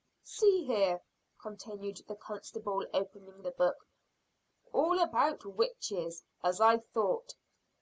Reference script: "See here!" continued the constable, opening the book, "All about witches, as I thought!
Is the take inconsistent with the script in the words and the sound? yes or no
no